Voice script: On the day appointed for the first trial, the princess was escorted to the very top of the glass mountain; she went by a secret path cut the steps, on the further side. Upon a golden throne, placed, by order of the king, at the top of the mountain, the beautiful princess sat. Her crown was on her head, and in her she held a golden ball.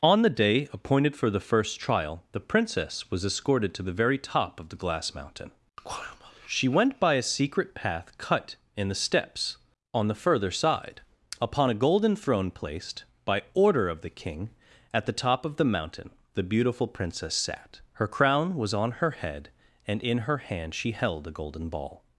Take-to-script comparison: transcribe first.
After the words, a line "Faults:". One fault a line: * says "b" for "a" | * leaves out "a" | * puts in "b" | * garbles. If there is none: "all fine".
On the day appointed for the first trial, the princess was escorted to the very top of the glass mountain; she went by a secret path cut in the steps, on the further side. Upon a golden throne, placed, by order of the king, at the top of the mountain, the beautiful princess sat. Her crown was on her head, and in her hand she held a golden ball.
Faults:
* puts in "in"
* puts in "hand"